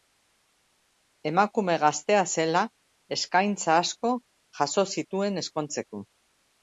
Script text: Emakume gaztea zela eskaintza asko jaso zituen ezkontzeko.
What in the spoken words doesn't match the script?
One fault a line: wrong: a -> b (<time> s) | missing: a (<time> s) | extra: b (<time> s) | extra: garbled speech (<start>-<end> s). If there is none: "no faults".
no faults